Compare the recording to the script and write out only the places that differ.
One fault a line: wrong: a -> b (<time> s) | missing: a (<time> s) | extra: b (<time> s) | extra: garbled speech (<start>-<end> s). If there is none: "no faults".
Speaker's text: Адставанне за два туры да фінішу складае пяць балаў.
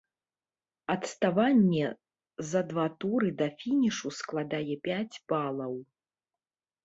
no faults